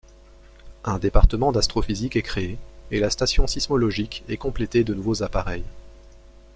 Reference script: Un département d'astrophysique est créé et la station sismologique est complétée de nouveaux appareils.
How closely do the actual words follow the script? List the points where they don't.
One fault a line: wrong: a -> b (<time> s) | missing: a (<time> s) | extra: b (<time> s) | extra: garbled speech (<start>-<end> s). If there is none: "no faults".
no faults